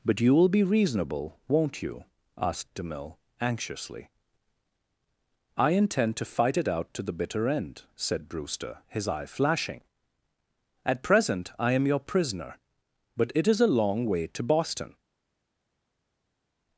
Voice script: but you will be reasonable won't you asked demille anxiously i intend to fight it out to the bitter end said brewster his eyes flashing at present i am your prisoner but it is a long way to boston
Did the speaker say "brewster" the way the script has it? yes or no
yes